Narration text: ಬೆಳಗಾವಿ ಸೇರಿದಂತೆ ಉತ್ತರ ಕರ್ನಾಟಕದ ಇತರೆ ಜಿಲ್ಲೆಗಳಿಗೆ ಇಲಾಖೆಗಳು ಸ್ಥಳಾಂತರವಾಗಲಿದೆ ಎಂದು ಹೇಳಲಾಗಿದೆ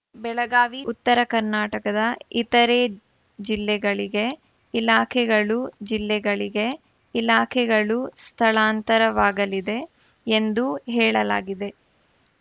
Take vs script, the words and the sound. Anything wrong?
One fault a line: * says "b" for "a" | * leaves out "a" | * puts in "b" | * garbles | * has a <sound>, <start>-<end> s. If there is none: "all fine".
* leaves out "ಸೇರಿದಂತೆ"
* puts in "ಜಿಲ್ಲೆಗಳಿಗೆ ಇಲಾಖೆಗಳು"